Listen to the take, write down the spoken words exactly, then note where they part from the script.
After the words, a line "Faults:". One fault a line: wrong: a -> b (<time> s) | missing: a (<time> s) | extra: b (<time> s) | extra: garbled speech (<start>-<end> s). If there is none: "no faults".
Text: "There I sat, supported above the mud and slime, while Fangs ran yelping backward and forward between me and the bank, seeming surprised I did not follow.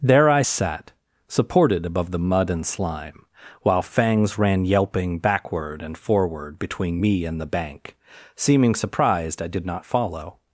"There I sat, supported above the mud and slime, while Fangs ran yelping backward and forward between me and the bank, seeming surprised I did not follow.
Faults:
no faults